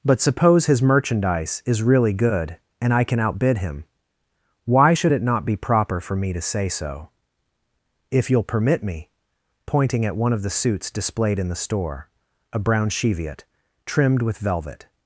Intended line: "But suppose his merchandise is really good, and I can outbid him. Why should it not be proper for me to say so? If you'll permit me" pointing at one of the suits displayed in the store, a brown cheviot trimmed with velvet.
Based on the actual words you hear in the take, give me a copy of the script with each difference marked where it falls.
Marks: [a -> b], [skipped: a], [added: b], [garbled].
"But suppose his merchandise is really good, and I can outbid him. Why should it not be proper for me to say so? If you'll permit me" pointing at one of the suits displayed in the store, a brown cheviot trimmed with velvet.